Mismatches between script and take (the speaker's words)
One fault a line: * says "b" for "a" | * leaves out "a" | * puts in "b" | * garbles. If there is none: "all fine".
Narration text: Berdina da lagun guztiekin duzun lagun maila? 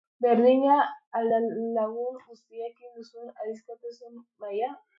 * puts in "al"
* says "adiskidetasun" for "lagun"